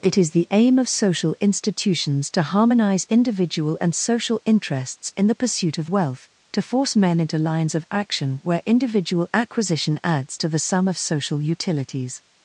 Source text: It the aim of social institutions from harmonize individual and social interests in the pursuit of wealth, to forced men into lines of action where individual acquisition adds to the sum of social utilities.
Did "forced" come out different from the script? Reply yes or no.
yes